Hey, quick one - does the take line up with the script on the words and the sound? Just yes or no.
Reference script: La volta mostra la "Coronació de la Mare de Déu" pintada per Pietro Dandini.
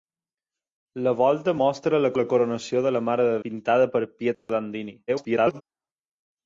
no